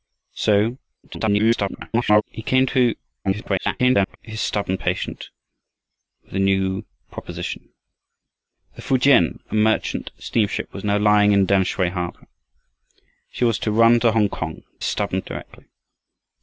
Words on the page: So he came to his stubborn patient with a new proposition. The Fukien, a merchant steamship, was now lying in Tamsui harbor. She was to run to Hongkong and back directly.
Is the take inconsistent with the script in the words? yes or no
yes